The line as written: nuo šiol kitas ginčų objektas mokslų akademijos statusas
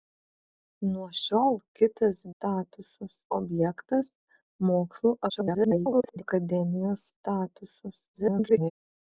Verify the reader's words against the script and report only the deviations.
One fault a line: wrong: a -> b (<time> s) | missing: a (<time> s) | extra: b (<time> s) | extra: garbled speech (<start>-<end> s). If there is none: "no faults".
wrong: ginčų -> statusas (2.3 s)
extra: garbled speech (5.3-6.2 s)
extra: garbled speech (8.1-8.7 s)